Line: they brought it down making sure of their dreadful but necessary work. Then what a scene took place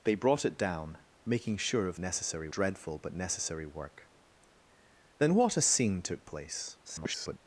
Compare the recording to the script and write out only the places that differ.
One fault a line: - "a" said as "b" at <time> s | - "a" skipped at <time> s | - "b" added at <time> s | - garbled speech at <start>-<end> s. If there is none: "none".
- "their" said as "necessary" at 2.0 s
- garbled speech at 6.8-7.4 s